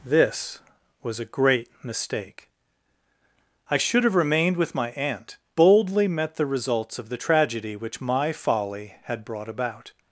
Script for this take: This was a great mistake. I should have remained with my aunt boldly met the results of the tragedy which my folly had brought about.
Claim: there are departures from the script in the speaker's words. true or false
false